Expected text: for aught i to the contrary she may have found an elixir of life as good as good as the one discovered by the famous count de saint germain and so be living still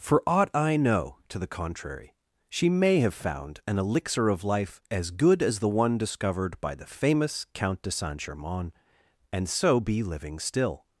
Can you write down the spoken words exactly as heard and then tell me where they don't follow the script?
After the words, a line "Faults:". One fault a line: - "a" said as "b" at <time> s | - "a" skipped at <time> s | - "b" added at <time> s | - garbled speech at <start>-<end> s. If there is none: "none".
for aught i know to the contrary she may have found an elixir of life as good as the one discovered by the famous count de saint germain and so be living still
Faults:
- "know" added at 0.8 s
- "good as" skipped at 5.6 s